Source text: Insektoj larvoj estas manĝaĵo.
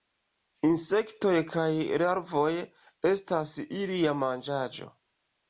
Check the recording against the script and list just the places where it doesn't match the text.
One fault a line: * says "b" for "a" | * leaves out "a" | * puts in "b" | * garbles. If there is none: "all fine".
* puts in "kaj"
* puts in "ilia"